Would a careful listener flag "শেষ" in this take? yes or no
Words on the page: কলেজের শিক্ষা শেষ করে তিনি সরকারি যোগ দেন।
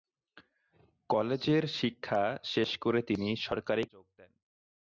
no